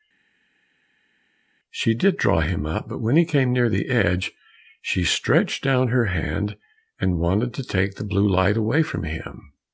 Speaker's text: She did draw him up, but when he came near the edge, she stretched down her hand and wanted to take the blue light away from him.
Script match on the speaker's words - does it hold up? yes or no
yes